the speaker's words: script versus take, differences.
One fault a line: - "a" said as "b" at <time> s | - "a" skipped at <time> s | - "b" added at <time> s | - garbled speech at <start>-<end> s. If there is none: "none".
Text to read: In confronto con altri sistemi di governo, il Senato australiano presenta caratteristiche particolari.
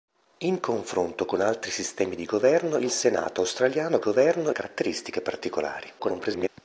- "presenta" said as "governo" at 4.0 s
- garbled speech at 6.0-6.5 s